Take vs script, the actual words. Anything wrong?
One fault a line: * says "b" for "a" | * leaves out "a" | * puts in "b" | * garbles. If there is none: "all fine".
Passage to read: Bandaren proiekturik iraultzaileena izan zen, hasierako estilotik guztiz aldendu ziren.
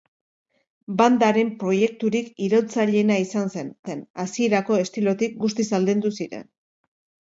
* puts in "zen"